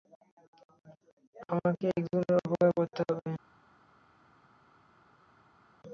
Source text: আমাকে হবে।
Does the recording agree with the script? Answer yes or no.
no